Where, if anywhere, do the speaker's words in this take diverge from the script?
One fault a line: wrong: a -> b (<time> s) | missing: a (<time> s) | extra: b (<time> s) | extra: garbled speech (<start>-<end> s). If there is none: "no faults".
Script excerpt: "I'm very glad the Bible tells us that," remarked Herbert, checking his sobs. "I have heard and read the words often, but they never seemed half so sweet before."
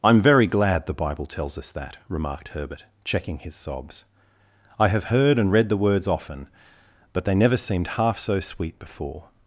no faults